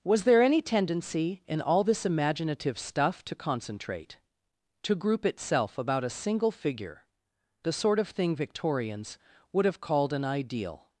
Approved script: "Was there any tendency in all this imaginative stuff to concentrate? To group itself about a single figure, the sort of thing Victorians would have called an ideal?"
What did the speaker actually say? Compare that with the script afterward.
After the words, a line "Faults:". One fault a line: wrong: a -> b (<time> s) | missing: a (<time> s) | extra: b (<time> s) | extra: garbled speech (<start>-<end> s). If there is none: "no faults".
"Was there any tendency in all this imaginative stuff to concentrate? To group itself about a single figure, the sort of thing Victorians would have called an ideal?"
Faults:
no faults